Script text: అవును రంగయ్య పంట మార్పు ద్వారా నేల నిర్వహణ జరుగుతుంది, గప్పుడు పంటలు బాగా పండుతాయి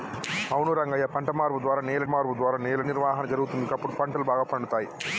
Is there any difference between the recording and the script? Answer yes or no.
yes